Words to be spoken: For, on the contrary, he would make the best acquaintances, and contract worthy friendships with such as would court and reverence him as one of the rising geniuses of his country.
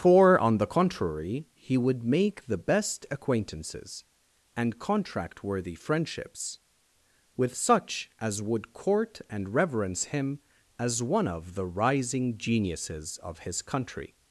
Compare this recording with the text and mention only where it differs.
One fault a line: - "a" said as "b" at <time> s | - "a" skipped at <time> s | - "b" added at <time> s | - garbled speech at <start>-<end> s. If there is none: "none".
none